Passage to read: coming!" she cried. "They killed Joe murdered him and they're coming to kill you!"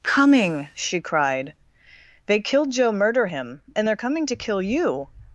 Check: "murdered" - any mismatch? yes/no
yes